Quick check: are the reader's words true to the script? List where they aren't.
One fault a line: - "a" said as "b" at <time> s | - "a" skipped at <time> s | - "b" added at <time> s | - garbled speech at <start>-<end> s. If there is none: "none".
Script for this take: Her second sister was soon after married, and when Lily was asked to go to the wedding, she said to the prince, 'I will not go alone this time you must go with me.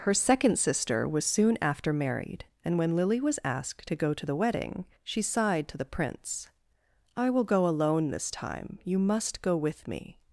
- "said" said as "sighed" at 5.2 s
- "not" skipped at 7.4 s